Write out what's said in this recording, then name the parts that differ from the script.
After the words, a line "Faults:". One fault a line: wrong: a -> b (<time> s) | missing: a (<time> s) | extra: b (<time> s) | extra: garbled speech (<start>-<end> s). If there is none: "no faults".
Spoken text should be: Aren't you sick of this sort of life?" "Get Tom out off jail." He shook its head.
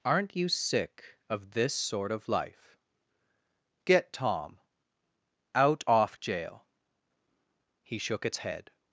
Aren't you sick of this sort of life?" "Get Tom out off jail." He shook its head.
Faults:
no faults